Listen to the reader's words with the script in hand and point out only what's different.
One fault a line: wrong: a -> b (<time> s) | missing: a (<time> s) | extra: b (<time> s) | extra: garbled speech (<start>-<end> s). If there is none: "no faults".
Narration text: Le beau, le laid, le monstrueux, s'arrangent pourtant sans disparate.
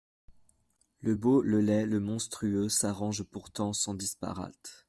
no faults